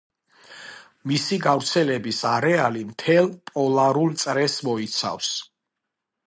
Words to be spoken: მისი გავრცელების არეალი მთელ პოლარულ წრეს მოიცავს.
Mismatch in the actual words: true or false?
false